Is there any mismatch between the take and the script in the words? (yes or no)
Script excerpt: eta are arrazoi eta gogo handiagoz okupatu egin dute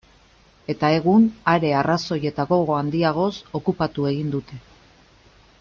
yes